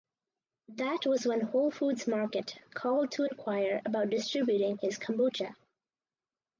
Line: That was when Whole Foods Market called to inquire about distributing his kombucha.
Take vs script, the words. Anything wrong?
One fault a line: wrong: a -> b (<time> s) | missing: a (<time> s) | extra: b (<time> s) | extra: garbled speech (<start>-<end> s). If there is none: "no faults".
no faults